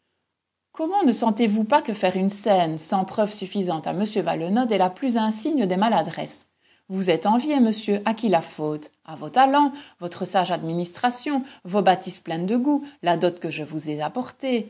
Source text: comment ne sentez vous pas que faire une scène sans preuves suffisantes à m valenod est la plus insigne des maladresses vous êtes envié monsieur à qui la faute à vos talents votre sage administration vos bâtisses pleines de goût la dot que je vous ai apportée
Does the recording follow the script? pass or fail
pass